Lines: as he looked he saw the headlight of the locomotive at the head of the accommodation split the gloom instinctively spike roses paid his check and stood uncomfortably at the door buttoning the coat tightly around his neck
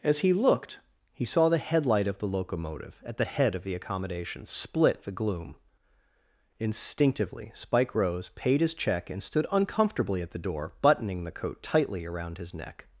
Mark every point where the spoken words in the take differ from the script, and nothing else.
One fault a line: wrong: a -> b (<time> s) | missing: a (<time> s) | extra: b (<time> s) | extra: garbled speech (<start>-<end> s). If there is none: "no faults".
wrong: roses -> rose (7.9 s)